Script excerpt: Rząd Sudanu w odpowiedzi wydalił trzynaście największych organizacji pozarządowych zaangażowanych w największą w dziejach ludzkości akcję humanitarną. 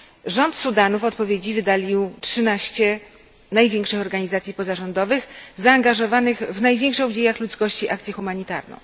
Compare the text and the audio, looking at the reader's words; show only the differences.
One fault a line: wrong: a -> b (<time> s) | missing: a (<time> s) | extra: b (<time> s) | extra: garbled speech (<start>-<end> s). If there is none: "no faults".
no faults